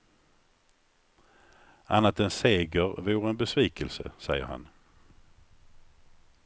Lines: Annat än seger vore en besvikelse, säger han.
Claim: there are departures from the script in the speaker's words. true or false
false